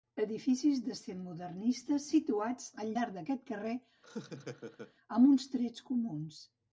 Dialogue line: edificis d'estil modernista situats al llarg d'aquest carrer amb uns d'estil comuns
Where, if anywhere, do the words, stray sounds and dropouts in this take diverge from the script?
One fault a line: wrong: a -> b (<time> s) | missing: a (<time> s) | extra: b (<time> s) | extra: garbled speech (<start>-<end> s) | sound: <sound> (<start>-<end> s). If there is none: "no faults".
sound: laugh (4.0-4.9 s)
wrong: d'estil -> trets (5.6 s)